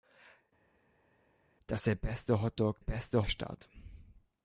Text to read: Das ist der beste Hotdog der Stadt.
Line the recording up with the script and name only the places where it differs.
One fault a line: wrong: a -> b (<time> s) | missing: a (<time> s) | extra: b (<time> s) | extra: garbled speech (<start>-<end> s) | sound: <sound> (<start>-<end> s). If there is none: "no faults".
missing: ist (1.9 s)
wrong: der -> beste (2.8 s)